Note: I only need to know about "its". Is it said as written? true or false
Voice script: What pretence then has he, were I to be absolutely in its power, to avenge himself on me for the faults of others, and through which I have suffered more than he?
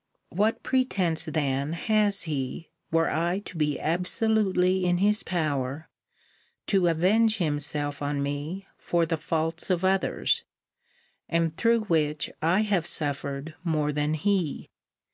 false